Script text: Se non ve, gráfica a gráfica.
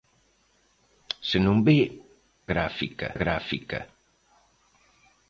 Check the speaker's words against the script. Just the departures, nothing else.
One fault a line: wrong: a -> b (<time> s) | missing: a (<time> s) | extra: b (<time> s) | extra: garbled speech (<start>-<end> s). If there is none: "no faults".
no faults